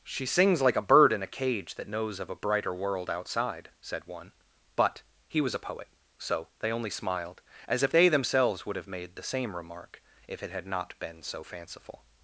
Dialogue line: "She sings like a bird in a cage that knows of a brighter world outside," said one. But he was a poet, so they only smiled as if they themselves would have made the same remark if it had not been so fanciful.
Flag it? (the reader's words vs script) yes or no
no